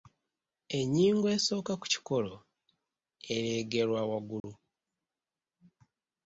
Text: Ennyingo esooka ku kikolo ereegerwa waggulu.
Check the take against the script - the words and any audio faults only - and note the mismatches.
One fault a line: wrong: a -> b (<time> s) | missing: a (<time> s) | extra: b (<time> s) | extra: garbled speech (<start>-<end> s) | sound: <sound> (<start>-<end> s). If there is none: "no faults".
sound: dropout (4.4-4.4 s)